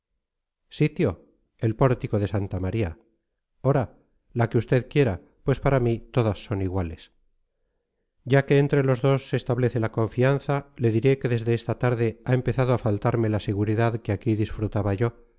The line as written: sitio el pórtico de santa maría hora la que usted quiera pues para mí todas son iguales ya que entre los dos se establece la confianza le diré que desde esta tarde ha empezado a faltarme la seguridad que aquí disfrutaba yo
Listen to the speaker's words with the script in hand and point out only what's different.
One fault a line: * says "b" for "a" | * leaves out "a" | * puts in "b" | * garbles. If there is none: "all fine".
all fine